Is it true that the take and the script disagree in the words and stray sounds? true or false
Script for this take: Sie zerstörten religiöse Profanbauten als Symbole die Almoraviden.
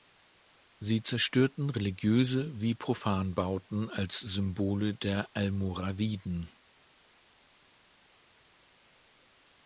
true